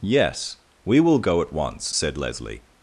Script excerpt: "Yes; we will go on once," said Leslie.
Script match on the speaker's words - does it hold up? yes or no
no